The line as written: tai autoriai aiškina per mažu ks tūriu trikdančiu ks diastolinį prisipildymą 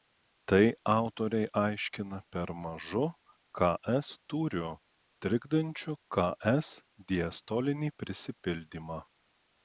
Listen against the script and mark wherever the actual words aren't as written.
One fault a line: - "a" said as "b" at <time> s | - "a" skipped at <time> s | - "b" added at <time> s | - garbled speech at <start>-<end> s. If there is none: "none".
none